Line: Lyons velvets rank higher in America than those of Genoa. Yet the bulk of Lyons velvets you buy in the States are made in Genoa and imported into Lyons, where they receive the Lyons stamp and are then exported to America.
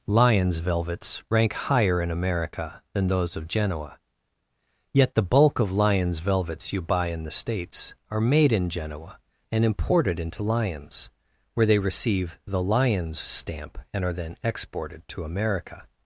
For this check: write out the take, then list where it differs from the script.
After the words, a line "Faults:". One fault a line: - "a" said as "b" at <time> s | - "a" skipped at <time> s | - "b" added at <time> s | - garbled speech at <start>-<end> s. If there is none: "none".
Lyons velvets rank higher in America than those of Genoa. Yet the bulk of Lyons velvets you buy in the States are made in Genoa and imported into Lyons, where they receive the Lyons stamp and are then exported to America.
Faults:
none